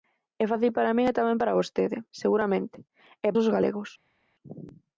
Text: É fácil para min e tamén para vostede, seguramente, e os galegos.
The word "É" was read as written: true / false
true